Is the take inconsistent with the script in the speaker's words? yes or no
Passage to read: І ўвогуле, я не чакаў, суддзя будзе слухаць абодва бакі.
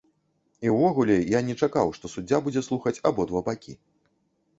yes